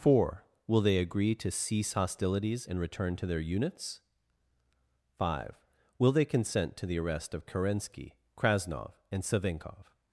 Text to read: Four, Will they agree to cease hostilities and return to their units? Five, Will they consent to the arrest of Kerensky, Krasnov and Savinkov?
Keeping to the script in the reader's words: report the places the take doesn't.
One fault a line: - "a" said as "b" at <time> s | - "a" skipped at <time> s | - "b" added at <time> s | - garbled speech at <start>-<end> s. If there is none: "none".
none